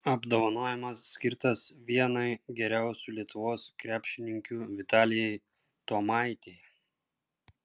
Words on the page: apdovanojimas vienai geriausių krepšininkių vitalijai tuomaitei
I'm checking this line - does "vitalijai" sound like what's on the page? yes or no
yes